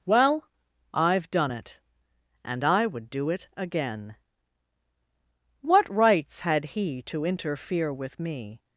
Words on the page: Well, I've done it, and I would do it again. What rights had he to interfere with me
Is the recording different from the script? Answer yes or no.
no